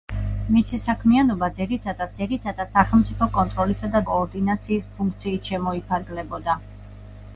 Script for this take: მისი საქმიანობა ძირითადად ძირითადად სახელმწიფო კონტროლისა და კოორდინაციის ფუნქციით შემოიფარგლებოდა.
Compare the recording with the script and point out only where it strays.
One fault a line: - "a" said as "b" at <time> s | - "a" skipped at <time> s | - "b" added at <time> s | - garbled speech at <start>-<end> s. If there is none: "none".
none